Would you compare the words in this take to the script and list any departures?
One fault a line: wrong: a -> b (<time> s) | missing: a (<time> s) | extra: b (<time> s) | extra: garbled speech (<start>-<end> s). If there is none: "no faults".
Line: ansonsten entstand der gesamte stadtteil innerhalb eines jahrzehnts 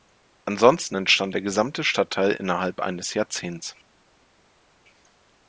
no faults